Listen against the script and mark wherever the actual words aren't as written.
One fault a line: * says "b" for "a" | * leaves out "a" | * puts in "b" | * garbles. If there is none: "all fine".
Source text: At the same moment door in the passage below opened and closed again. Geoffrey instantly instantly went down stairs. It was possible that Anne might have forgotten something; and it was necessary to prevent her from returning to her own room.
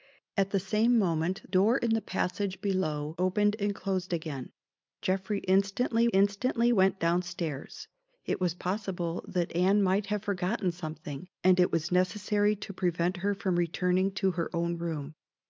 all fine